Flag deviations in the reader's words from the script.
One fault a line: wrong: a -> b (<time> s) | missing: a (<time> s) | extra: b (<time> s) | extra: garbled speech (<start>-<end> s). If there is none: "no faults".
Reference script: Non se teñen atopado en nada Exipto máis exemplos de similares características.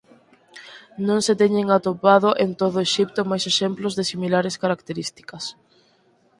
wrong: nada -> todo (2.6 s)